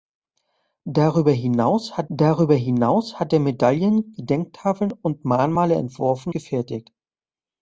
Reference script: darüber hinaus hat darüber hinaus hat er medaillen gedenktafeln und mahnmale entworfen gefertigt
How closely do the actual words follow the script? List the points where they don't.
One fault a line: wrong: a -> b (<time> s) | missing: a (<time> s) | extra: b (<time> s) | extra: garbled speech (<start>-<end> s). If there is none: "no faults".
no faults